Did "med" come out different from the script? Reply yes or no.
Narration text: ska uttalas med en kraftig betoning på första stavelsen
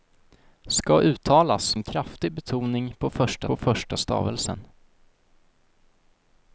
yes